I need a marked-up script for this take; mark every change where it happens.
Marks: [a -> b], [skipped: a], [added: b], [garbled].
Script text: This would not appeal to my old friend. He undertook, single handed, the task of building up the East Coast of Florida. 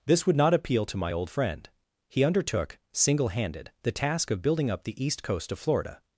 This would not appeal to my old friend. He undertook, single handed, the task of building up the East Coast of Florida.